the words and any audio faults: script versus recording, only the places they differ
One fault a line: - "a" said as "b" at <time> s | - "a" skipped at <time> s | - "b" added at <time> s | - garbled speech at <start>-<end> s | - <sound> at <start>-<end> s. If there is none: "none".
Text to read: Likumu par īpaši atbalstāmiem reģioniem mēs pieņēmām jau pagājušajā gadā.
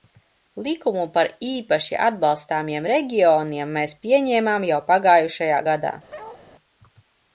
- bark at 6.1-6.4 s